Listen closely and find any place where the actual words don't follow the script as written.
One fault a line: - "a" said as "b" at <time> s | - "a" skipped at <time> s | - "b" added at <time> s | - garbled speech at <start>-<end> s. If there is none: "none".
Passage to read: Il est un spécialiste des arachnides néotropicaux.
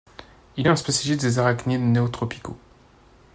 none